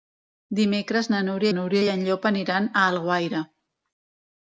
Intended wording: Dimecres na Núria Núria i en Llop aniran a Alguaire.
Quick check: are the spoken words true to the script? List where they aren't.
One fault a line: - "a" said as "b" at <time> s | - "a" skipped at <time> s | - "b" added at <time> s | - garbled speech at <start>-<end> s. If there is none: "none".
none